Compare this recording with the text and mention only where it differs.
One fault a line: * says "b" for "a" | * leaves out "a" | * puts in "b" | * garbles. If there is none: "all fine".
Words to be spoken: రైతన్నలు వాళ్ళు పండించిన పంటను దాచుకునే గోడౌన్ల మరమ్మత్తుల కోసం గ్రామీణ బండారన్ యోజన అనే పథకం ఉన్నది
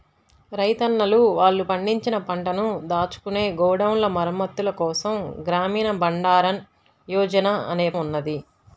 * leaves out "పథకం"